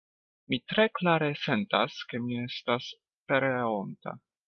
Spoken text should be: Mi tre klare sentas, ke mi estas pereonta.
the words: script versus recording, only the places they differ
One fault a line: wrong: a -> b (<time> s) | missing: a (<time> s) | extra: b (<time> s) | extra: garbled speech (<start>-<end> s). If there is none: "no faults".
no faults